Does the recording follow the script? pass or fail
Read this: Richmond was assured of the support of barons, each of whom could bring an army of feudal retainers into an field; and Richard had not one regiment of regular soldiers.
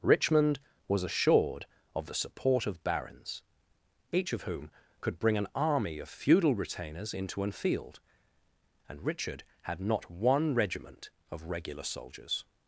pass